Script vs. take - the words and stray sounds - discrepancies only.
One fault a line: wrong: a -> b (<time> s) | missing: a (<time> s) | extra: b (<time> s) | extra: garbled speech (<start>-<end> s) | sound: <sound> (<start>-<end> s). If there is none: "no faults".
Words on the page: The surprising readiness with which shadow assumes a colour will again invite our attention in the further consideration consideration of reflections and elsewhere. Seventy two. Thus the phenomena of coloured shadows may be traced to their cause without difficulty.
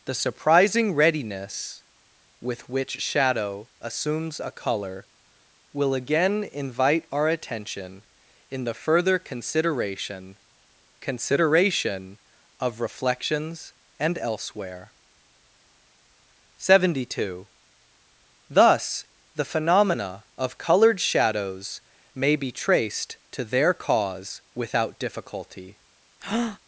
sound: breath (26.2-26.6 s)